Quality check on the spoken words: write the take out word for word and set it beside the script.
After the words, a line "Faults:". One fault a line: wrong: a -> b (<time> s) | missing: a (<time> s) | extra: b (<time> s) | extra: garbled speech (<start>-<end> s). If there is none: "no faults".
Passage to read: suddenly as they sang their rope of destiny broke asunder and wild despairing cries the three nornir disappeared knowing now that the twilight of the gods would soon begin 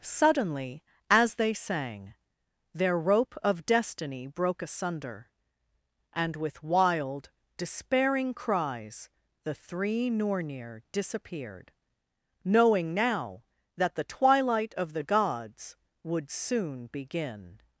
suddenly as they sang their rope of destiny broke asunder and with wild despairing cries the three nornir disappeared knowing now that the twilight of the gods would soon begin
Faults:
extra: with (6.3 s)